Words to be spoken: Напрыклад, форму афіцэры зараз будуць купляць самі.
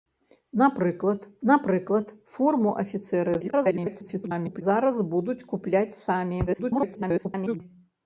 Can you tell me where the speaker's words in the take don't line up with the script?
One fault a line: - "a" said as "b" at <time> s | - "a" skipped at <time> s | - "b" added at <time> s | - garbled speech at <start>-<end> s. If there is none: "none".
- "напрыклад" added at 1.5 s
- garbled speech at 3.4-4.6 s
- garbled speech at 6.5-7.6 s